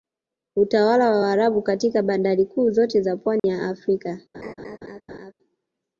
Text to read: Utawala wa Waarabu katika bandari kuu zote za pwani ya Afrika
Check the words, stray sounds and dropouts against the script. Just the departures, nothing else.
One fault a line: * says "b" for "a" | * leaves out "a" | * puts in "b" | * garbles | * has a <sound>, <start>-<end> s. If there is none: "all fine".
* has a dropout, 3.4-3.4 s
* has a laugh, 4.3-5.3 s